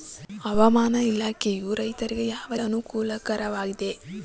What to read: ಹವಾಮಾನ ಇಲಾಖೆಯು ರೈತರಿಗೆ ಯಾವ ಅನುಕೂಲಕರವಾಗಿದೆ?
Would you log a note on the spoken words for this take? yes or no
no